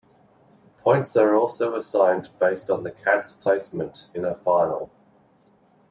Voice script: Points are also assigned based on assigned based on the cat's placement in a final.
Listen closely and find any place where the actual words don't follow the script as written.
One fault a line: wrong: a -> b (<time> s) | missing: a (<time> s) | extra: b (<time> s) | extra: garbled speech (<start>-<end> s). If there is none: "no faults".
missing: assigned based on (2.8 s)